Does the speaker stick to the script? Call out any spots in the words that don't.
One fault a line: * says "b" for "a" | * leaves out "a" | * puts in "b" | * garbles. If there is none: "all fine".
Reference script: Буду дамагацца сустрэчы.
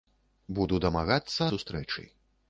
all fine